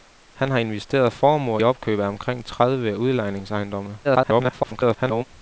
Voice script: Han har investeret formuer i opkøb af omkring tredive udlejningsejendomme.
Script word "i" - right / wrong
wrong